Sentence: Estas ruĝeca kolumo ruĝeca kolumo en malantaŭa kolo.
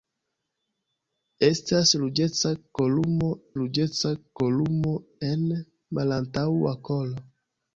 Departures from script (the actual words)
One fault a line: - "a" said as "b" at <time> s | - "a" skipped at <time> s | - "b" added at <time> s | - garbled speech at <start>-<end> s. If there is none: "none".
none